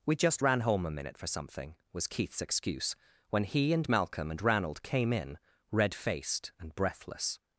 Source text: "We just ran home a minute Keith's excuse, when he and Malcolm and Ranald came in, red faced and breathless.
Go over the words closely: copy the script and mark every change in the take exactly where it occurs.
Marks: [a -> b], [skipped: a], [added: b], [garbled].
"We just ran home a minute [added: for something was] Keith's excuse, when he and Malcolm and Ranald came in, red faced and breathless.